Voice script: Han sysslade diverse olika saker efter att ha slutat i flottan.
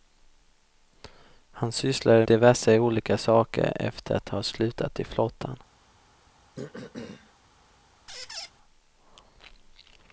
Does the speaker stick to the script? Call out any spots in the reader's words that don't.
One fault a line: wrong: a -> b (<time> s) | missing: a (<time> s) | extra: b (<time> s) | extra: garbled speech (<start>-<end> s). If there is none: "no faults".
no faults